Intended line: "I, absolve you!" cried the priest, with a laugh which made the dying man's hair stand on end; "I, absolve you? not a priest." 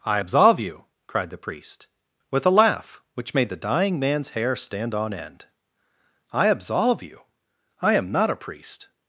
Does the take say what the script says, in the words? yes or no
no